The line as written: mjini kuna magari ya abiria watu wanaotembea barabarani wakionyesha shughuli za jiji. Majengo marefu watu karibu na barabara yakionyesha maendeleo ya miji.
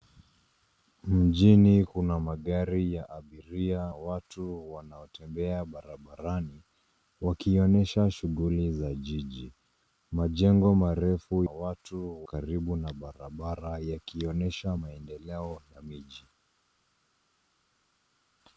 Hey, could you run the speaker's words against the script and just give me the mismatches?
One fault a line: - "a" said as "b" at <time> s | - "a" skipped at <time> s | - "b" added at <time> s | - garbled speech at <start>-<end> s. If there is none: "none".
none